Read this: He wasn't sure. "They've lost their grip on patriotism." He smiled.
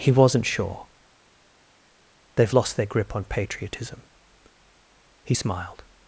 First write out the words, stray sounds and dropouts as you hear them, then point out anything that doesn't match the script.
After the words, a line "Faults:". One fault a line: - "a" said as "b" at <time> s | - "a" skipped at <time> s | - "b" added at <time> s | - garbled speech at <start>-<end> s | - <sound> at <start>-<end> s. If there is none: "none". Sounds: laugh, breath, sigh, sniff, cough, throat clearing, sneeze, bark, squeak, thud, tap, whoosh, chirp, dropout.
He wasn't sure. "They've lost their grip on patriotism." He smiled.
Faults:
none